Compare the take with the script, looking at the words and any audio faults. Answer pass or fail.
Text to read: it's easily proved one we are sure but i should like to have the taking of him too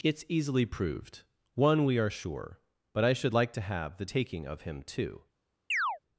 fail